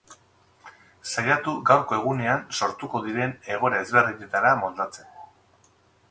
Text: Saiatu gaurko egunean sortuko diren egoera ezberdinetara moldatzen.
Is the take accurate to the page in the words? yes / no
yes